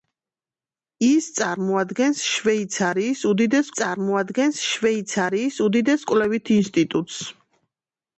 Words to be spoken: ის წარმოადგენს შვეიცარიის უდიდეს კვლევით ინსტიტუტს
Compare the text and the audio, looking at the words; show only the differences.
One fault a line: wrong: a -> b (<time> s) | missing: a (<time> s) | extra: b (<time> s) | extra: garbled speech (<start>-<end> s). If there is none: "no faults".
extra: წარმოადგენს შვეიცარიის უდიდეს (3.8 s)